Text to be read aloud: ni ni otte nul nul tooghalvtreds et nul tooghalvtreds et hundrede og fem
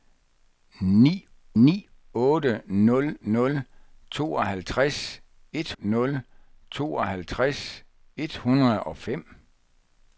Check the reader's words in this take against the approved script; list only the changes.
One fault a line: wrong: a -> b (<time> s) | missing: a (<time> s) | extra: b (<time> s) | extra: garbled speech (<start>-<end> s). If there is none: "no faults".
no faults